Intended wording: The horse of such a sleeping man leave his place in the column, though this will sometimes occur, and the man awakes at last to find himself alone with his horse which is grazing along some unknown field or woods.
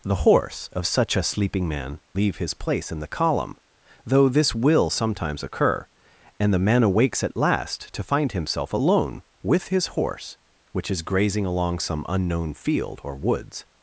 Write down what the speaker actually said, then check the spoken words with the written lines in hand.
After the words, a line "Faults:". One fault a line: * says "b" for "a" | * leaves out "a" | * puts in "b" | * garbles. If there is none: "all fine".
The horse of such a sleeping man leave his place in the column, though this will sometimes occur, and the man awakes at last to find himself alone with his horse which is grazing along some unknown field or woods.
Faults:
all fine